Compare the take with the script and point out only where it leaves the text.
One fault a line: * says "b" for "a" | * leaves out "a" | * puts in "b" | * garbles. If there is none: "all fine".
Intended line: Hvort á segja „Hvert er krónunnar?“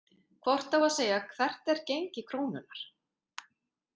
* puts in "að"
* puts in "gengi"